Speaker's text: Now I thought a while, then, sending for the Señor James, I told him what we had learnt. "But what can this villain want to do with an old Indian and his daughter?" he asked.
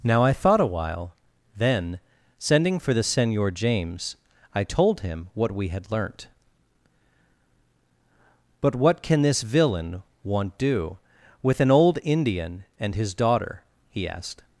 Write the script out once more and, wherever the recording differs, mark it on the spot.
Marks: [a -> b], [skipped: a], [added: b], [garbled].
Now I thought a while, then, sending for the Señor James, I told him what we had learnt. "But what can this villain want [skipped: to] do with an old Indian and his daughter?" he asked.